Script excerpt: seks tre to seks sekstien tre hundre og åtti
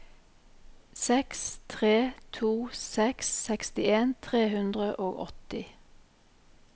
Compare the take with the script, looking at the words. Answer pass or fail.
pass